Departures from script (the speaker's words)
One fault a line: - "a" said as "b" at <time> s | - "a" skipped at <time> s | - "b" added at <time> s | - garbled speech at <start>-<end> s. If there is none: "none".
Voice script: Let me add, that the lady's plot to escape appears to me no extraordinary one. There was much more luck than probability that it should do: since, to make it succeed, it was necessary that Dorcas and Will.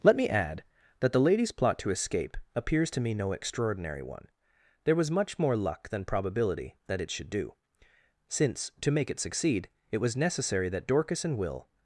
none